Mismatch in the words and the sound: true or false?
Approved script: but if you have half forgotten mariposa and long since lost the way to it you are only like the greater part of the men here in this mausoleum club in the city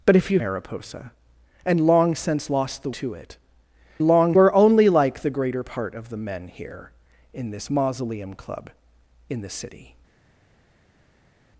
true